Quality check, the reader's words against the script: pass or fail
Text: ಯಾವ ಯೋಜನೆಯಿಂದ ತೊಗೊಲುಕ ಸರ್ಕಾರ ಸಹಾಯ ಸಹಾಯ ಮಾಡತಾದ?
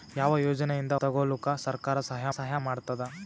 pass